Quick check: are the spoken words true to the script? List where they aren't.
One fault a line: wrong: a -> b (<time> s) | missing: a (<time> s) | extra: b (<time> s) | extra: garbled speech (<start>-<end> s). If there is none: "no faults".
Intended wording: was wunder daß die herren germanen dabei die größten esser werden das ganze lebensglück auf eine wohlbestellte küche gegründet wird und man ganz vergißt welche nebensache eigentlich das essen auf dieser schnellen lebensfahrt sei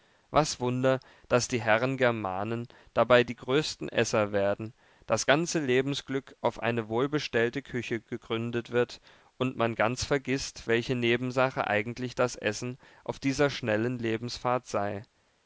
no faults